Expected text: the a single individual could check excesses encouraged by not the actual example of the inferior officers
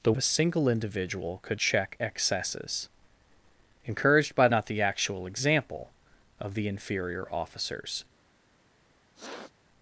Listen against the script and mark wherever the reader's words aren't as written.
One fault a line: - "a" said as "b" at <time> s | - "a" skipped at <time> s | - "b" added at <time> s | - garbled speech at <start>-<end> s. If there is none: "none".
none